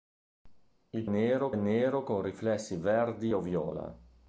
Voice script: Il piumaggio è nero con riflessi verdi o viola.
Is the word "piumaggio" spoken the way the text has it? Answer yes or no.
no